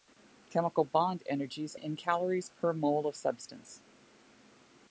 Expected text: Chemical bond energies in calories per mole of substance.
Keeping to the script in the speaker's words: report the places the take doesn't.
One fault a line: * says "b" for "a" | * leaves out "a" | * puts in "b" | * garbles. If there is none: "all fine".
all fine